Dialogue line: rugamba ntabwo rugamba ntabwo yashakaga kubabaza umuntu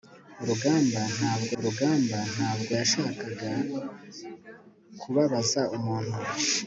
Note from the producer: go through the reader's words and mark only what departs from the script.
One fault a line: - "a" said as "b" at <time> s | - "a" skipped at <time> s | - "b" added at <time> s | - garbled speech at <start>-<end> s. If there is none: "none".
none